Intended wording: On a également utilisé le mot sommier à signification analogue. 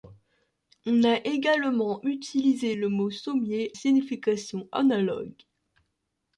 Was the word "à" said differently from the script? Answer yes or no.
yes